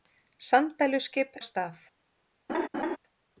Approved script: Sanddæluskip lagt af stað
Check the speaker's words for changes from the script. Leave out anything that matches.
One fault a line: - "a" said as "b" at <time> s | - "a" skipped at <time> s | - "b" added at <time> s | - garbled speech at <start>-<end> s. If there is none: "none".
- "lagt" skipped at 1.4 s